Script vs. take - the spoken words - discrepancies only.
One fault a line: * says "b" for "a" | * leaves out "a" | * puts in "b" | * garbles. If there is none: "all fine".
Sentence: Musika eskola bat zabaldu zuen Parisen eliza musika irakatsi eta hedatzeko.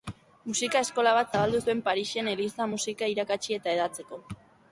all fine